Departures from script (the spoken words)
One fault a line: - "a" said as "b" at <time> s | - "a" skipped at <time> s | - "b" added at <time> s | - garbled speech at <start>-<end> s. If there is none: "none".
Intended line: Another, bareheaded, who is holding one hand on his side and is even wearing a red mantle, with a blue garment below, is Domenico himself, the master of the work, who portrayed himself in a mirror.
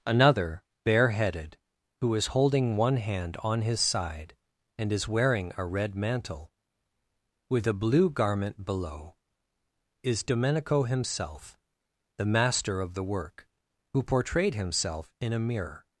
- "even" skipped at 5.1 s